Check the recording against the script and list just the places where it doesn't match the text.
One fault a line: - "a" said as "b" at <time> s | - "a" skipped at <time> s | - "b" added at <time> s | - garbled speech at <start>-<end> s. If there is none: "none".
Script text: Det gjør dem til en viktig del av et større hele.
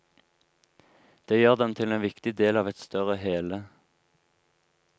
none